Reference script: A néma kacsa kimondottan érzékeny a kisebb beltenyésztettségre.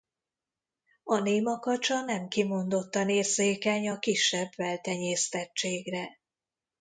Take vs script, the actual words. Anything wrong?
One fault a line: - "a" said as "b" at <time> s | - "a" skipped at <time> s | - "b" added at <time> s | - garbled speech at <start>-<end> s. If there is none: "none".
- "nem" added at 2.0 s